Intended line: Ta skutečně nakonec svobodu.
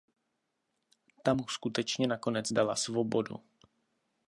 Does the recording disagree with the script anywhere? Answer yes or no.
yes